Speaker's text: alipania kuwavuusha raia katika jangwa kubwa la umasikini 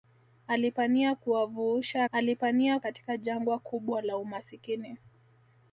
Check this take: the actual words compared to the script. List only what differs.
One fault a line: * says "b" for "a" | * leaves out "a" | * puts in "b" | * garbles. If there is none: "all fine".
* says "alipania" for "raia"